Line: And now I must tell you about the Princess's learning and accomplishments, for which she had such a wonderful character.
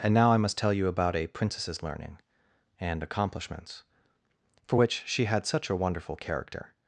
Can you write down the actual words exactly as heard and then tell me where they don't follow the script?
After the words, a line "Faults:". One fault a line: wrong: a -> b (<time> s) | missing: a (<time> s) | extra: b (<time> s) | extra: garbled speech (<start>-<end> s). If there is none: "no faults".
And now I must tell you about a Princess's learning and accomplishments, for which she had such a wonderful character.
Faults:
wrong: the -> a (1.1 s)